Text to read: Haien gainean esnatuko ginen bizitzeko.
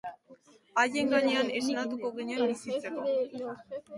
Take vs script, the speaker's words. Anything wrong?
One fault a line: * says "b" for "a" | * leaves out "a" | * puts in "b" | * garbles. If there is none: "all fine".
all fine